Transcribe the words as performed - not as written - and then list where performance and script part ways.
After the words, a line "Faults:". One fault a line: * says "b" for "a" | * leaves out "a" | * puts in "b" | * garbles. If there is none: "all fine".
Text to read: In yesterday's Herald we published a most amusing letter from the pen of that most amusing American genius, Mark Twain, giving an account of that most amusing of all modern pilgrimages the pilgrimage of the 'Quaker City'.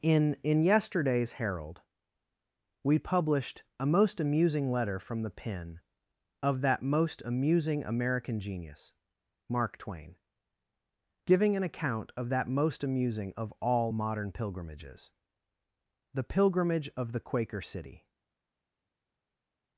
In in yesterday's Herald we published a most amusing letter from the pen of that most amusing American genius, Mark Twain, giving an account of that most amusing of all modern pilgrimages the pilgrimage of the 'Quaker City'.
Faults:
* puts in "in"